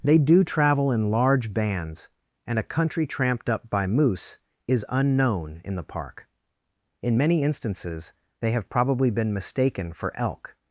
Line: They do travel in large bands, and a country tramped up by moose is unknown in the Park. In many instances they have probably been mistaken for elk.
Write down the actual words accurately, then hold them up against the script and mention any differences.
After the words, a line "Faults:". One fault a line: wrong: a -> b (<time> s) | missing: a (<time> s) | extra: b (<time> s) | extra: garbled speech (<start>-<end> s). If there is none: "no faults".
They do travel in large bands, and a country tramped up by moose is unknown in the Park. In many instances they have probably been mistaken for elk.
Faults:
no faults